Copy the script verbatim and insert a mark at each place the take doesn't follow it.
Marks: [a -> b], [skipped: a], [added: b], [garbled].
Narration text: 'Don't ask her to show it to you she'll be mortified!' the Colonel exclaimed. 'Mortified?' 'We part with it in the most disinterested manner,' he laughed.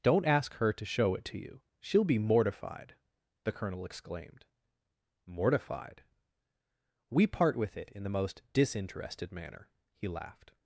'Don't ask her to show it to you she'll be mortified!' the Colonel exclaimed. 'Mortified?' 'We part with it in the most disinterested manner,' he laughed.